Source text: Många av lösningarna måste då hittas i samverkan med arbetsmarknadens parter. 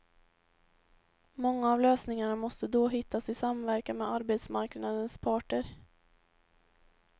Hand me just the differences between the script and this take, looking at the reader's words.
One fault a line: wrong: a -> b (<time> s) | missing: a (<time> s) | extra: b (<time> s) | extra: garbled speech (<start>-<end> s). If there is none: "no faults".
no faults